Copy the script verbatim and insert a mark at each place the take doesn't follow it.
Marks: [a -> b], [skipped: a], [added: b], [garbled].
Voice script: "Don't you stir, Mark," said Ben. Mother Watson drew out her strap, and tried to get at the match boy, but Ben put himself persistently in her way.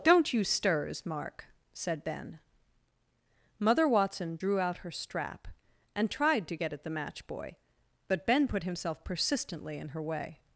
"Don't you [stir, -> stirs] Mark," said Ben. Mother Watson drew out her strap, and tried to get at the match boy, but Ben put himself persistently in her way.